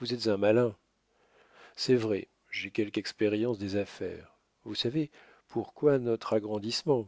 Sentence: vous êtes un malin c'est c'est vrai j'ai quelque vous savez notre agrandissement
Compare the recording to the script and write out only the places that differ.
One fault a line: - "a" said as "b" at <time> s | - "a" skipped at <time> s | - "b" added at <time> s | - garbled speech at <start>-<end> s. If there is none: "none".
- "c'est" skipped at 1.9 s
- "expérience des affaires" added at 3.0 s
- "pourquoi" added at 5.5 s